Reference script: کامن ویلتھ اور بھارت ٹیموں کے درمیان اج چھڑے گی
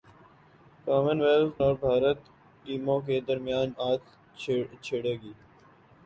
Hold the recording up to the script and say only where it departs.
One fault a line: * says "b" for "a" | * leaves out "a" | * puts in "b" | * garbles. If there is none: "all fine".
all fine